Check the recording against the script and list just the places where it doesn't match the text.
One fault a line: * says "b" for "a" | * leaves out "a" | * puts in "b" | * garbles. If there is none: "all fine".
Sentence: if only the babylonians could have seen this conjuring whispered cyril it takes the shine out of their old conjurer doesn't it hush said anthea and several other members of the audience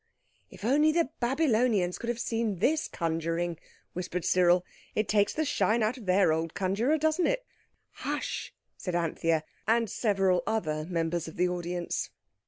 all fine